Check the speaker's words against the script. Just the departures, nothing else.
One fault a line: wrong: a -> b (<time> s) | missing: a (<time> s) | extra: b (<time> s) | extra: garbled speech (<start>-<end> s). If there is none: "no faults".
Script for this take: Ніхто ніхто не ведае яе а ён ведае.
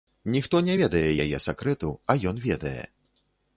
missing: ніхто (0.6 s)
extra: сакрэту (1.5 s)